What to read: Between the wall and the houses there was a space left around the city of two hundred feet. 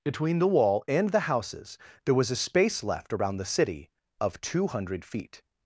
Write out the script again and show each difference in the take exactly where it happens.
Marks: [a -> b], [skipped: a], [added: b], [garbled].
Between the wall and the houses there was a space left around the city of two hundred feet.